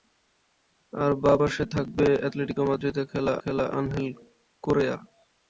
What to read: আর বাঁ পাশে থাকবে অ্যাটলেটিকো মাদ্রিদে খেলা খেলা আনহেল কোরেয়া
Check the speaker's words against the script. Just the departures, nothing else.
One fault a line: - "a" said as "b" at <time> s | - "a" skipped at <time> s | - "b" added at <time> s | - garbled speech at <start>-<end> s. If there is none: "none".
none